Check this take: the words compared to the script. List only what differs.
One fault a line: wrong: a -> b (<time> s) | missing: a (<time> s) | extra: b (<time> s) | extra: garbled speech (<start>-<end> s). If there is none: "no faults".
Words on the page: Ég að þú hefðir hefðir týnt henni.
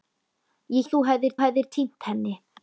no faults